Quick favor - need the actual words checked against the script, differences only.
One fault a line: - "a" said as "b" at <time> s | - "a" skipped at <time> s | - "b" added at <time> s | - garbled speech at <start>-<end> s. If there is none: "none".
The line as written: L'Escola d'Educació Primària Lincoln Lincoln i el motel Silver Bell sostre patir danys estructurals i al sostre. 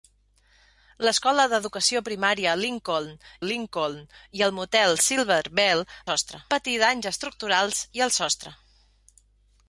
none